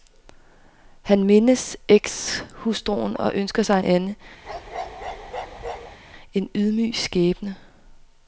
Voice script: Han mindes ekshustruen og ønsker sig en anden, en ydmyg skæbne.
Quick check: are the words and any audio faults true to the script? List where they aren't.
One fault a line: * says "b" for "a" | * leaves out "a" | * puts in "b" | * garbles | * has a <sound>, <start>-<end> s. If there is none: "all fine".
* leaves out "en"
* has a bark, 4.4-6.0 s